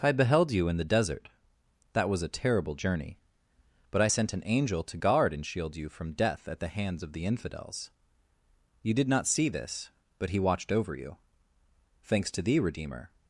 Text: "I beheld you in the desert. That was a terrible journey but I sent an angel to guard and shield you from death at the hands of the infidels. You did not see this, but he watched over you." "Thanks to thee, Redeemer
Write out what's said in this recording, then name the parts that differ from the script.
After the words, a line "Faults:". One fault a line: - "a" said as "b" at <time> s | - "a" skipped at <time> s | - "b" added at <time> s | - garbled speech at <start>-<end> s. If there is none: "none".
"I beheld you in the desert. That was a terrible journey but I sent an angel to guard and shield you from death at the hands of the infidels. You did not see this, but he watched over you." "Thanks to thee, Redeemer
Faults:
none